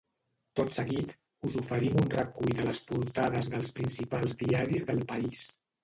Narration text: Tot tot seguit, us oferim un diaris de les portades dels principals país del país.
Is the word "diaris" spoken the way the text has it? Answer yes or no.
no